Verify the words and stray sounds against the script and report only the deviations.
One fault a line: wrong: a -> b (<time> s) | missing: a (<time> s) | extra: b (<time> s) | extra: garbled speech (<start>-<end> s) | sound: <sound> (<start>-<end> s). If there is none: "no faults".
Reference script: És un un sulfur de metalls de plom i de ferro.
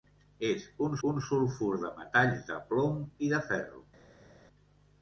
no faults